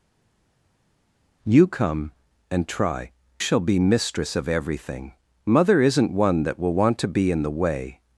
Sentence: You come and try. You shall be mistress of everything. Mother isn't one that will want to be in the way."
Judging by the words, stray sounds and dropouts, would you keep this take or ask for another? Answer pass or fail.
fail